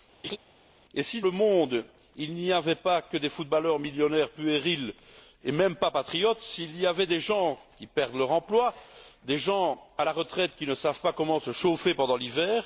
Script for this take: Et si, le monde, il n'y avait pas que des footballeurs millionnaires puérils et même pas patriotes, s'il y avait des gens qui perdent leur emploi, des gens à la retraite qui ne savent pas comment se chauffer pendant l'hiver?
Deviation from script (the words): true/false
false